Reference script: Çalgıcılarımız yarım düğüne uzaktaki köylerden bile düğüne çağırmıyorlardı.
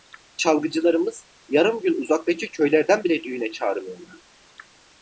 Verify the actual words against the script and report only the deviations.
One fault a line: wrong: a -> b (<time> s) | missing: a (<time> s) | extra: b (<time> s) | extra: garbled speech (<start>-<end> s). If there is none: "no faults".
wrong: düğüne -> gün (1.8 s)